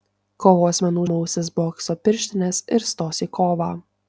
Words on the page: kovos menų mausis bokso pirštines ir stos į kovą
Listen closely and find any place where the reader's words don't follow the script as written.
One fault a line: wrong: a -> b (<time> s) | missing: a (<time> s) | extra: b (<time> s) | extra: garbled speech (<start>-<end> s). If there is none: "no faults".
no faults